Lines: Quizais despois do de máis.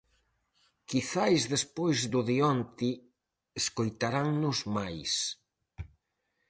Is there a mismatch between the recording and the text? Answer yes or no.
yes